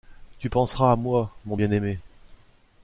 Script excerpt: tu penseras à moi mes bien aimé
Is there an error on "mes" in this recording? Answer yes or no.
yes